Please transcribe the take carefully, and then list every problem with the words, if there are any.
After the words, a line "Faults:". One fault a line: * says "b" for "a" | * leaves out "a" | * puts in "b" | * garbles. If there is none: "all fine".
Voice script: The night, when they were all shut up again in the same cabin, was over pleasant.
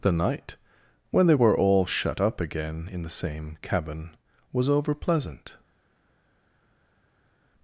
The night, when they were all shut up again in the same cabin, was over pleasant.
Faults:
all fine